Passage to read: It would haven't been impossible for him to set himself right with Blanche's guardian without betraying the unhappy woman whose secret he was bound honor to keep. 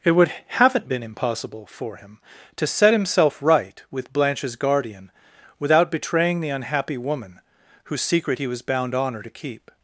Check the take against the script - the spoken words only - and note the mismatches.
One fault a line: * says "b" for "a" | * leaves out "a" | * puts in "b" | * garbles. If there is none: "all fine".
all fine